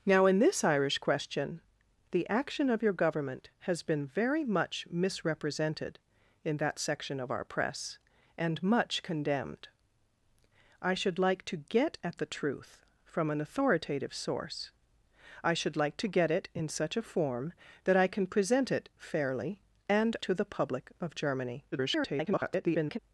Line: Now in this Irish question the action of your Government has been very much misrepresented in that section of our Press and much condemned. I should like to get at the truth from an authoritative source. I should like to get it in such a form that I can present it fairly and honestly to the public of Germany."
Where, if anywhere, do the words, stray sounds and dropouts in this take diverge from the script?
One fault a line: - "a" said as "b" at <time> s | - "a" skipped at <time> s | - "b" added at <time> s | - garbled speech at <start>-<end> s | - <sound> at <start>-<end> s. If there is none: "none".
- "honestly" skipped at 20.2 s
- garbled speech at 21.7-23.0 s